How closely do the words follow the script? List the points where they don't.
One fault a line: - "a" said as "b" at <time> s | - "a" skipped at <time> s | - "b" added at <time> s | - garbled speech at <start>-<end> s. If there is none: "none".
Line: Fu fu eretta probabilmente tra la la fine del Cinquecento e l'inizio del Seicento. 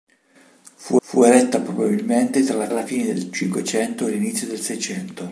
none